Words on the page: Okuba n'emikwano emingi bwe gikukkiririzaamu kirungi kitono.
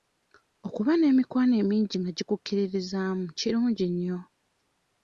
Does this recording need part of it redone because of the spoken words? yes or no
yes